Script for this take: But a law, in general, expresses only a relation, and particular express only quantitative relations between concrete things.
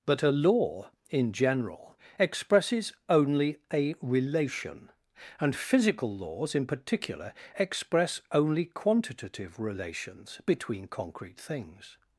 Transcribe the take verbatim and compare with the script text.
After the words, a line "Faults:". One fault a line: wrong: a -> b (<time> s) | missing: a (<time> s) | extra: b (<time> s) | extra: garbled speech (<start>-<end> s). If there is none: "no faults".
But a law, in general, expresses only a relation, and physical laws in particular express only quantitative relations between concrete things.
Faults:
extra: physical laws in (5.6 s)